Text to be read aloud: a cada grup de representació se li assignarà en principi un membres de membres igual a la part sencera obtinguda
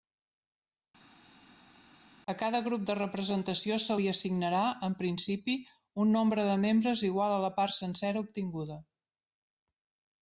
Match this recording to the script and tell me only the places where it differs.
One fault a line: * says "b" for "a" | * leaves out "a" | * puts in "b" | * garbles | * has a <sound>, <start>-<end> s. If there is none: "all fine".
* says "nombre" for "membres"